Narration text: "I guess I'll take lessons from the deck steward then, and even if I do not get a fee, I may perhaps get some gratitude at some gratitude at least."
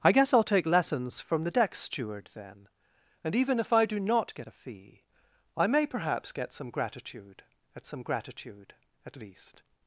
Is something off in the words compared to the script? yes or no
no